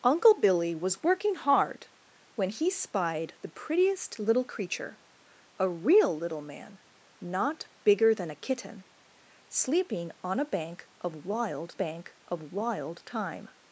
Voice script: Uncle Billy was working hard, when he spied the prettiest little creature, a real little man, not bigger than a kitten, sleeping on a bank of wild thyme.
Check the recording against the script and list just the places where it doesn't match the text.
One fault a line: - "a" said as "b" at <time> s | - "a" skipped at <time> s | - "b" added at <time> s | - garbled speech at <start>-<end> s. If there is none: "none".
- "bank of wild" added at 11.7 s